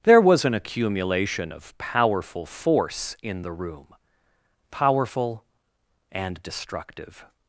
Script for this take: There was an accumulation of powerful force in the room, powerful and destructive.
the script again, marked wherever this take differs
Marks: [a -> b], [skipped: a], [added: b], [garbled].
There was an accumulation of powerful force in the room, powerful and destructive.